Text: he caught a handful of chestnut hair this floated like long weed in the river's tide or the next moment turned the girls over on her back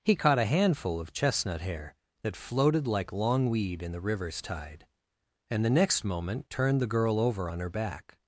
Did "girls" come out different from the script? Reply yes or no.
yes